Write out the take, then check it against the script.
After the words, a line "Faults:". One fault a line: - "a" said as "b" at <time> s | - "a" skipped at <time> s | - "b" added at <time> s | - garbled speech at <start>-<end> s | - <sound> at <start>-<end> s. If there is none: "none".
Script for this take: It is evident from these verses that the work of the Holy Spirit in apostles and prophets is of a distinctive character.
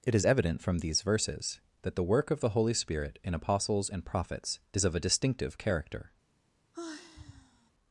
It is evident from these verses that the work of the Holy Spirit in apostles and prophets is of a distinctive character.
Faults:
- sigh at 6.7-7.7 s